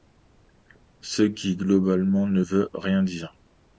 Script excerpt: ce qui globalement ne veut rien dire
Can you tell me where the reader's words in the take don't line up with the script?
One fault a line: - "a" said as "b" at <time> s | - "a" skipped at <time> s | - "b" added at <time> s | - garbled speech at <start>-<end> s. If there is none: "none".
none